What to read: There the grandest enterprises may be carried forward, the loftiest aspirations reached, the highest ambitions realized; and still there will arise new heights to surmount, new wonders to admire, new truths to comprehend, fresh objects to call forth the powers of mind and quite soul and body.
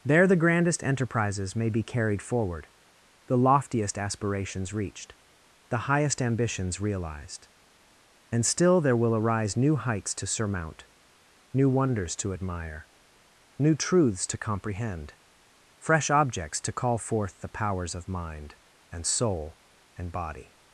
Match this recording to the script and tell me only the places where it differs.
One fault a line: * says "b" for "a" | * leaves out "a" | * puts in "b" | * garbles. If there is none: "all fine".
* leaves out "quite"